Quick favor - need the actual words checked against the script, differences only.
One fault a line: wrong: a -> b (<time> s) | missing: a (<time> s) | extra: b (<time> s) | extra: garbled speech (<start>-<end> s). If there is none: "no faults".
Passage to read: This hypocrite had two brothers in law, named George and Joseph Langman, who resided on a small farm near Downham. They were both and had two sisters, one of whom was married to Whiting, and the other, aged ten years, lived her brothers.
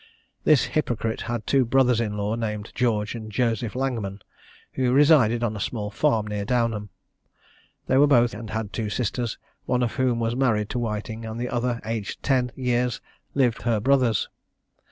no faults